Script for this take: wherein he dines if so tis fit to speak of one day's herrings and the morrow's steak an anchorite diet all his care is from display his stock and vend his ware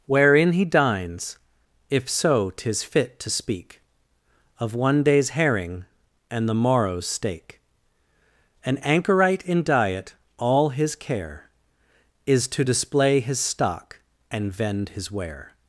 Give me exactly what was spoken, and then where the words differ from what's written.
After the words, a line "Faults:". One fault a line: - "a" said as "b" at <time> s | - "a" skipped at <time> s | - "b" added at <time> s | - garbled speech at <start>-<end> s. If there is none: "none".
wherein he dines if so tis fit to speak of one day's herring and the morrow's steak an anchorite in diet all his care is to display his stock and vend his ware
Faults:
- "herrings" said as "herring" at 5.3 s
- "in" added at 9.4 s
- "from" said as "to" at 12.5 s